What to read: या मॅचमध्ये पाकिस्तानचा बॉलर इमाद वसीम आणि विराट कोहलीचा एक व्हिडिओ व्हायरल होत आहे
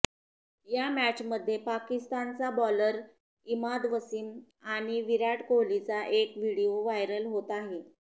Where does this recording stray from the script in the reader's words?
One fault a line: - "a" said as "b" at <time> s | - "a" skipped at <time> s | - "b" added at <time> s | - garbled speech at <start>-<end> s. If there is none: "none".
none